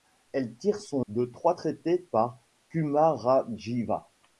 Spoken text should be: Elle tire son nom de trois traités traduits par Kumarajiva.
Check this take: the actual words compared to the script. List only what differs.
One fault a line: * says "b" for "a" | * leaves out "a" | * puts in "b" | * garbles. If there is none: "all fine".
* leaves out "nom"
* leaves out "traduits"